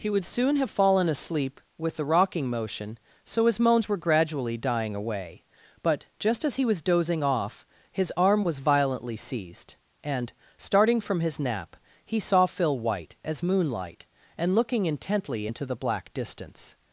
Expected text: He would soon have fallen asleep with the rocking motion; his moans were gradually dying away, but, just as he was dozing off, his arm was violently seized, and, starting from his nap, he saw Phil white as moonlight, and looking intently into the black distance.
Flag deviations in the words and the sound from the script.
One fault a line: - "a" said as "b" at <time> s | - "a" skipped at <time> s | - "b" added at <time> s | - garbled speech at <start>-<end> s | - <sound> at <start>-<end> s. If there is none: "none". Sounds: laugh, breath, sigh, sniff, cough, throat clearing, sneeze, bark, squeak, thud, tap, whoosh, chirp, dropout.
- "so" added at 3.2 s